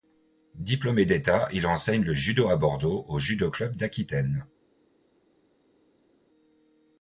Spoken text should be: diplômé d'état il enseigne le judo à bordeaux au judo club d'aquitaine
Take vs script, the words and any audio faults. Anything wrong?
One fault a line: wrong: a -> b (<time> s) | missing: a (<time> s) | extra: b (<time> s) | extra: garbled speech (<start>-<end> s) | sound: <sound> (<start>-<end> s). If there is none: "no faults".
no faults